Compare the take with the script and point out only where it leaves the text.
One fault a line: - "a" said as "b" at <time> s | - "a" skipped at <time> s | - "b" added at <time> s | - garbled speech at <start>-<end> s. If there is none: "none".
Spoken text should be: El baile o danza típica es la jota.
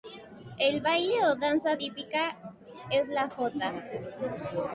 none